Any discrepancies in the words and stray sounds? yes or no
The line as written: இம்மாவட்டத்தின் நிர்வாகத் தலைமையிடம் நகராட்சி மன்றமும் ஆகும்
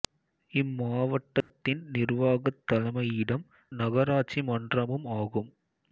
yes